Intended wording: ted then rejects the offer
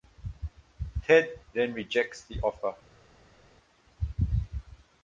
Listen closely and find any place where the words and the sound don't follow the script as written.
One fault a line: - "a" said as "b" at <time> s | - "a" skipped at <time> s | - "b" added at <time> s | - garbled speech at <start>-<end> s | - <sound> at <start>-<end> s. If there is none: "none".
none